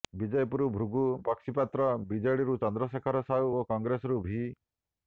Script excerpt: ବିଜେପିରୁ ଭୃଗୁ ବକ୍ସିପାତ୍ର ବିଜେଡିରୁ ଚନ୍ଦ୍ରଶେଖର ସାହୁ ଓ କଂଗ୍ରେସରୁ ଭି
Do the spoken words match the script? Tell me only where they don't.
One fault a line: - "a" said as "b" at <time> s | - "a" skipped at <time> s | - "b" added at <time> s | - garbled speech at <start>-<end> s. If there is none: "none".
none